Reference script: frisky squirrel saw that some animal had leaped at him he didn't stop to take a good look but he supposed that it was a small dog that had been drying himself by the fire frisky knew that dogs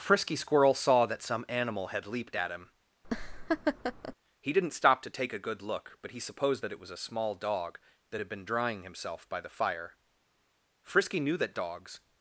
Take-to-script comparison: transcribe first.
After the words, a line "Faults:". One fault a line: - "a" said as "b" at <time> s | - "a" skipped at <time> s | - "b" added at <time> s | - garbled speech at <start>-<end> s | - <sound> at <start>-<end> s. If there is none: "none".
frisky squirrel saw that some animal had leaped at him he didn't stop to take a good look but he supposed that it was a small dog that had been drying himself by the fire frisky knew that dogs
Faults:
- laugh at 3.0-4.1 s